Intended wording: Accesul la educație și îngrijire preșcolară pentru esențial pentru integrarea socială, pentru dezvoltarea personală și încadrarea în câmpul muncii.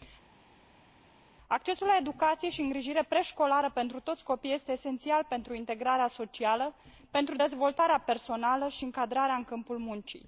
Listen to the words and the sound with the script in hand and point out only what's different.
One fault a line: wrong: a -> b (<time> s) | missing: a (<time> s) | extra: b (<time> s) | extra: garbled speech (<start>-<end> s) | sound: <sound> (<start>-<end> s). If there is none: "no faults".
extra: toți copiii este (4.0 s)